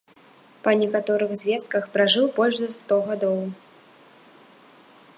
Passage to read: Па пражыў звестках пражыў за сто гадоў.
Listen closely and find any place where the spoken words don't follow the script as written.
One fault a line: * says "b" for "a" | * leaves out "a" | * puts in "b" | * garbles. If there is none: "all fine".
* says "некаторых" for "пражыў"
* puts in "больш"